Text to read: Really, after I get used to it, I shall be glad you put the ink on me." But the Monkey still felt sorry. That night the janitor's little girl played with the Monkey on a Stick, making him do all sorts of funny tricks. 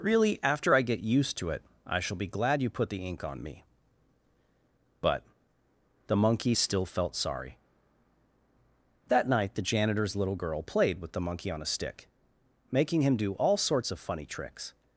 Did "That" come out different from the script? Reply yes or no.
no